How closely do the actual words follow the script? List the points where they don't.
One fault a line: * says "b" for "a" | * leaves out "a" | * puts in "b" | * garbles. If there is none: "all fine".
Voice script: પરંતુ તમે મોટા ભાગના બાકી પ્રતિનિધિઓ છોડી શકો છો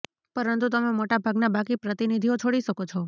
all fine